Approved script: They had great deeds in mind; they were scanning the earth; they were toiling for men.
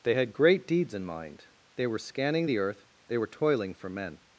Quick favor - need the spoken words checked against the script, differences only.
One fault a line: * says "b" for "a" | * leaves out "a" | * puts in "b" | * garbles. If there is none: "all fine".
all fine